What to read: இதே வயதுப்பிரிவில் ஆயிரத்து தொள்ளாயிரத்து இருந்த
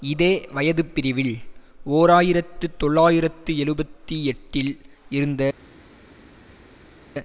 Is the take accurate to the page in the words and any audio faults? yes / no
no